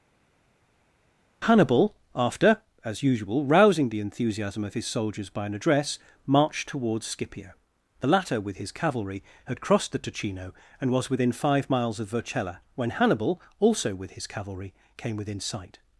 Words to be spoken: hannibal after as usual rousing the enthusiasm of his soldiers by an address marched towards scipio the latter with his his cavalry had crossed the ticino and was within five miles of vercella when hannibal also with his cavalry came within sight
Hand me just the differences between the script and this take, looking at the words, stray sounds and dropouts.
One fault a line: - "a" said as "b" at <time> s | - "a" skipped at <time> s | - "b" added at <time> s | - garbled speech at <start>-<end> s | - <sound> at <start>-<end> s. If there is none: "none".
- "his" skipped at 8.7 s